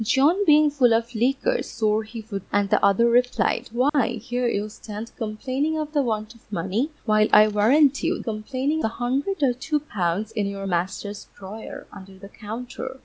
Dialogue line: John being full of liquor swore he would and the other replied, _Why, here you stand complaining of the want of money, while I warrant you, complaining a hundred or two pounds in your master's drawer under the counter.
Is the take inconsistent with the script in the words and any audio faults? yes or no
yes